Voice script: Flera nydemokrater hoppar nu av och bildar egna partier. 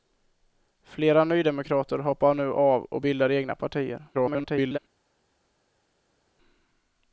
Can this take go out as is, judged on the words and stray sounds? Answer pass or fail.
fail